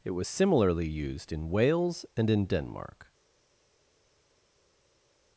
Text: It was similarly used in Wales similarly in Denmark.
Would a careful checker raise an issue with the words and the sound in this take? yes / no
yes